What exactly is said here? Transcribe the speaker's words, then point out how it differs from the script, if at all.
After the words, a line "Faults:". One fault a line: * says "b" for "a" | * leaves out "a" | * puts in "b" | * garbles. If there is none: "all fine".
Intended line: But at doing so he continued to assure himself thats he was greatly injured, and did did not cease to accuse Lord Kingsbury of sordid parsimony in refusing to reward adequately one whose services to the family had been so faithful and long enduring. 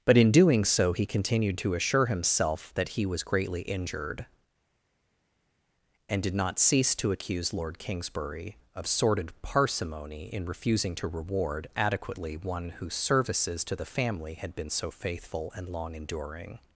But in doing so he continued to assure himself that he was greatly injured, and did not cease to accuse Lord Kingsbury of sordid parsimony in refusing to reward adequately one whose services to the family had been so faithful and long enduring.
Faults:
* says "in" for "at"
* says "that" for "thats"
* leaves out "did"